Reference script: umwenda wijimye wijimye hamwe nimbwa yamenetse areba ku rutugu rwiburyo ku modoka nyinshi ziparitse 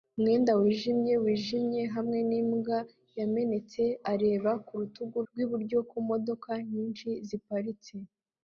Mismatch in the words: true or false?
false